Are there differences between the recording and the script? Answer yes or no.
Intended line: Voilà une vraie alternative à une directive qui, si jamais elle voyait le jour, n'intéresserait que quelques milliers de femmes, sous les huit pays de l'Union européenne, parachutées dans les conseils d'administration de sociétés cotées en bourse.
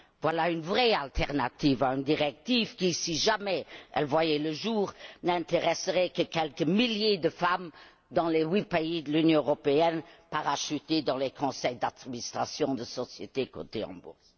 yes